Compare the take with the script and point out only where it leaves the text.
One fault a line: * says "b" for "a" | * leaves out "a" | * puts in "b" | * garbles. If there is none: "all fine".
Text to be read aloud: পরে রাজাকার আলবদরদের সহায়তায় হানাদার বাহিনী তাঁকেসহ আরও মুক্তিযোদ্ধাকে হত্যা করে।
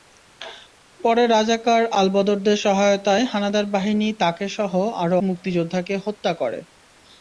all fine